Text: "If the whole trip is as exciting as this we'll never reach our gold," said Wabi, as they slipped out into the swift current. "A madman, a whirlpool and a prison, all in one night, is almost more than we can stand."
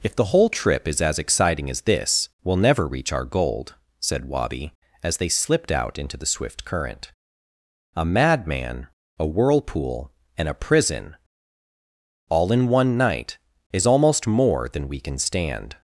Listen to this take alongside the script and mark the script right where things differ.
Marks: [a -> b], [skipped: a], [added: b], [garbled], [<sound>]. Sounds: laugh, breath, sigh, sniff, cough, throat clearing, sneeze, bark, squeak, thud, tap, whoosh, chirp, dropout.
"If the whole trip is as exciting as this we'll never reach our gold," said Wabi, as they slipped out into the swift current. "A madman, a whirlpool and a prison, all in one night, is almost more than we can stand."